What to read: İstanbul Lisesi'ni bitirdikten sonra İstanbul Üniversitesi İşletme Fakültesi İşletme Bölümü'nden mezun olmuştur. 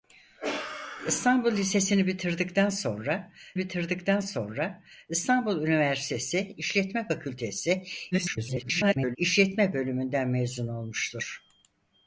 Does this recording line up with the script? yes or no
no